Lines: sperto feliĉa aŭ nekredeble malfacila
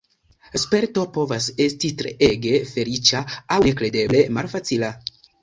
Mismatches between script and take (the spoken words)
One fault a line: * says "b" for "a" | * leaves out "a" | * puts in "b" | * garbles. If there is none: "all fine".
* puts in "povas esti treege"